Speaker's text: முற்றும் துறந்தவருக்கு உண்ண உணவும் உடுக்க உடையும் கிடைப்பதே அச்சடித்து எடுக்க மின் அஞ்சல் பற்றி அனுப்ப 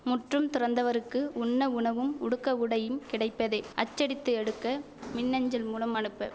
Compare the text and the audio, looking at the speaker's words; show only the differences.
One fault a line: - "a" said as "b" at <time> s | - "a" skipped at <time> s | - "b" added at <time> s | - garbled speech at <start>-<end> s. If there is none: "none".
- "பற்றி" said as "மூலம்" at 5.7 s